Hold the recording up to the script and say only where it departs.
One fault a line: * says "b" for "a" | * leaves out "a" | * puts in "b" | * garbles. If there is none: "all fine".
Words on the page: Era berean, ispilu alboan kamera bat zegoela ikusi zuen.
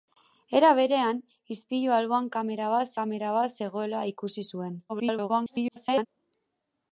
* puts in "kamera bat"
* garbles